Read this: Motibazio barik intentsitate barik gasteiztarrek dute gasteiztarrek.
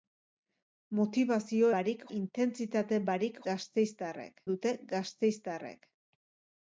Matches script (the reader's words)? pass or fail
pass